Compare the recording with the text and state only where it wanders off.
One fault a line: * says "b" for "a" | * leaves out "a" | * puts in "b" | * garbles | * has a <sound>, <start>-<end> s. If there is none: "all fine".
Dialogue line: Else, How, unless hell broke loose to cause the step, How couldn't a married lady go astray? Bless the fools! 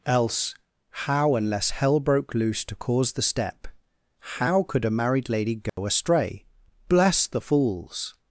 * says "could" for "couldn't"
* has a dropout, 5.7-5.8 s